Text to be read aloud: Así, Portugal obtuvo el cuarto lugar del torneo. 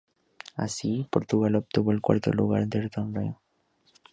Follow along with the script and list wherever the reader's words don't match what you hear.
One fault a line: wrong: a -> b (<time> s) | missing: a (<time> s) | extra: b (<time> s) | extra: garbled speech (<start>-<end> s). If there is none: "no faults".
no faults